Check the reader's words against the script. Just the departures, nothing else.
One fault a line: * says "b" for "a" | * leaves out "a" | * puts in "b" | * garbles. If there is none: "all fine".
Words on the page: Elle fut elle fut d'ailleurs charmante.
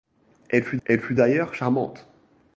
all fine